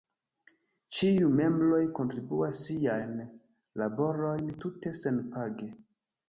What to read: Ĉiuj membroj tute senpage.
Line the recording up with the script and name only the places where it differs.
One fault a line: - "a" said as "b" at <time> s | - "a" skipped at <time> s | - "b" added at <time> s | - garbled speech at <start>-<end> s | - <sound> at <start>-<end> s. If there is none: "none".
- "kontribuas siajn laborojn" added at 2.0 s